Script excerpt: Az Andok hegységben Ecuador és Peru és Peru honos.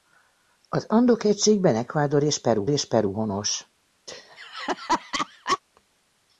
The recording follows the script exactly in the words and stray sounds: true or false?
false